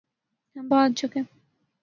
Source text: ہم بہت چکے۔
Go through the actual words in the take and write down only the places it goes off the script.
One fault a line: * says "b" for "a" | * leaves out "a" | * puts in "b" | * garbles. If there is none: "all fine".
all fine